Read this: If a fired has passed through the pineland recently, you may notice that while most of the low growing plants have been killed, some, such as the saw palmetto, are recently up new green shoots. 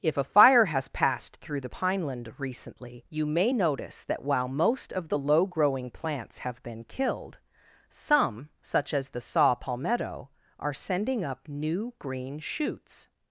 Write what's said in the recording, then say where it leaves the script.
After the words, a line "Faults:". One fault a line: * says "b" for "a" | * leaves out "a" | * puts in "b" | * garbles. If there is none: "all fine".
If a fire has passed through the pineland recently, you may notice that while most of the low growing plants have been killed, some, such as the saw palmetto, are sending up new green shoots.
Faults:
* says "fire" for "fired"
* says "sending" for "recently"